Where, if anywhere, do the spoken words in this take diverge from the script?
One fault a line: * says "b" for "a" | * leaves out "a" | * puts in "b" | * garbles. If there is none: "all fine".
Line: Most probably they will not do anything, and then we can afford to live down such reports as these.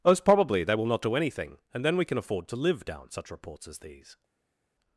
all fine